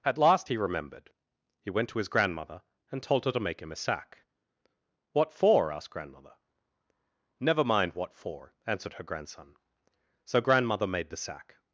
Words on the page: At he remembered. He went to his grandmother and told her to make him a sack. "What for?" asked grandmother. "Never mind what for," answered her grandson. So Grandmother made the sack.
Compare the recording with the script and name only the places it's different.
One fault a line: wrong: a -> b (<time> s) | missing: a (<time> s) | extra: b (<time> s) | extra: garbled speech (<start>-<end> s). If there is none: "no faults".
extra: last (0.2 s)